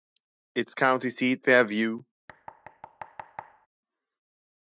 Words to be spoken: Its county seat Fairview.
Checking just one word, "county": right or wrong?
right